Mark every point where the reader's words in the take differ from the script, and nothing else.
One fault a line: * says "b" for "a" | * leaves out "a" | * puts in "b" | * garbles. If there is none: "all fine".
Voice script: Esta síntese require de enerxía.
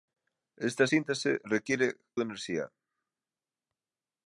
all fine